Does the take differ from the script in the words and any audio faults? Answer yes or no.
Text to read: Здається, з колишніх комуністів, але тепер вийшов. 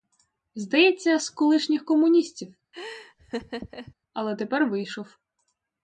yes